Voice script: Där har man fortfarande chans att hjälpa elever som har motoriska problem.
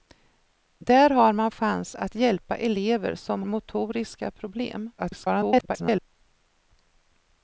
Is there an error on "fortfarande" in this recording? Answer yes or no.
yes